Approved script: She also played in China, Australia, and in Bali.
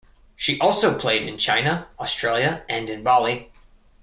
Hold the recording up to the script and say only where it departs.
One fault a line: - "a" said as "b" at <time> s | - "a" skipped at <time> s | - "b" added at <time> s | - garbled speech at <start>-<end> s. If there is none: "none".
none